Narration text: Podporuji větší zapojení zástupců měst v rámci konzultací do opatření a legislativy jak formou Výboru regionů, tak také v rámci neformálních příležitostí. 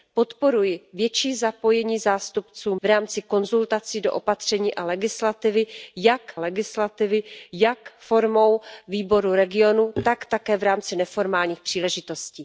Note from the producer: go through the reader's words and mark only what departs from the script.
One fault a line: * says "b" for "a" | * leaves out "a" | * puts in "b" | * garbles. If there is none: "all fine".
* leaves out "měst"
* puts in "legislativy jak"